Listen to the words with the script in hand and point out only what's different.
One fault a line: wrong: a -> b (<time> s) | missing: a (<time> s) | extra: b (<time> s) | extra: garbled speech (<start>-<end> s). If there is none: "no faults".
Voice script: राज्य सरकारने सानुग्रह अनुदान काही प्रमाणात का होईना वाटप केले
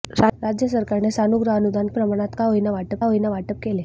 missing: काही (1.9 s)
extra: होईना वाटप (3.0 s)